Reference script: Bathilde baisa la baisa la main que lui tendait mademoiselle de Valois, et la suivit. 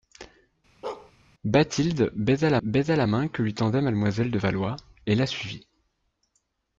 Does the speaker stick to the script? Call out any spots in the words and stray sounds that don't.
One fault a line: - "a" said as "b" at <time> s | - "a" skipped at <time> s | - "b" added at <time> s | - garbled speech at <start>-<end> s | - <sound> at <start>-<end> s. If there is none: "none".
- bark at 0.8-1.1 s